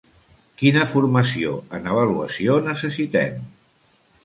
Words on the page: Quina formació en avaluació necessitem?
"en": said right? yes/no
yes